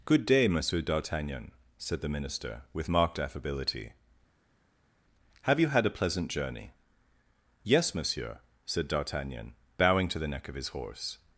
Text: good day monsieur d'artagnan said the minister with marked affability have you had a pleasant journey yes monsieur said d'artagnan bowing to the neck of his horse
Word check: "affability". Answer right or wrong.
right